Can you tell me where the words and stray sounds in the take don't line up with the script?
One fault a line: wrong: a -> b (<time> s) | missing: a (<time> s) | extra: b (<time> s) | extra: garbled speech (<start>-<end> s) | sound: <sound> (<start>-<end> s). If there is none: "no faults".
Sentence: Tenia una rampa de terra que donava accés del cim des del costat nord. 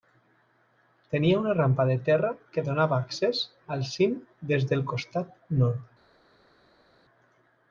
wrong: del -> al (3.8 s)